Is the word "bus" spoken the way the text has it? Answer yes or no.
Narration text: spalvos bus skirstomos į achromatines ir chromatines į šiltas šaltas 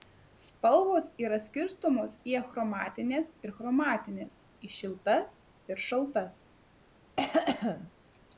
no